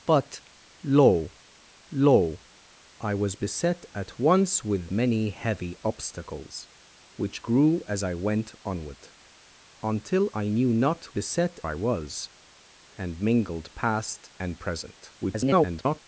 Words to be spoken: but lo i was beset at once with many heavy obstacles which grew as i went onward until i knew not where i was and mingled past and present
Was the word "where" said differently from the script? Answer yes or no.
yes